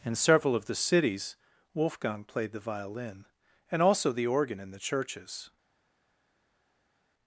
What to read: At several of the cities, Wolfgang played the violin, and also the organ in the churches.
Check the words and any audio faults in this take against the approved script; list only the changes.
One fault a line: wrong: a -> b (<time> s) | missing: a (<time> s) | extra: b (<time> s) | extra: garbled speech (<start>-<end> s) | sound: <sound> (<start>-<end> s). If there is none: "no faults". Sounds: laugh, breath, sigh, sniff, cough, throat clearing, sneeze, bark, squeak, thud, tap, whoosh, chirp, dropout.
wrong: At -> In (0.0 s)